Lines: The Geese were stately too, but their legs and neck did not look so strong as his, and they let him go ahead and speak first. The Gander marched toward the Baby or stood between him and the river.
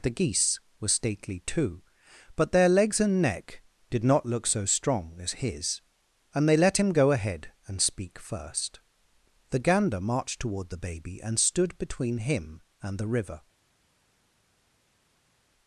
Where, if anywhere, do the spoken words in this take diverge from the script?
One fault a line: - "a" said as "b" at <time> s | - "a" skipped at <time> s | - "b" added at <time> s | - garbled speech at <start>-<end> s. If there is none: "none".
- "or" said as "and" at 11.2 s